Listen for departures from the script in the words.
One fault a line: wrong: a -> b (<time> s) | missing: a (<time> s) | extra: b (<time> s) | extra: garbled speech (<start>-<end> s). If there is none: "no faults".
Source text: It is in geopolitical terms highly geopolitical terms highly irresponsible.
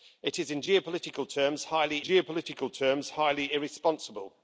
no faults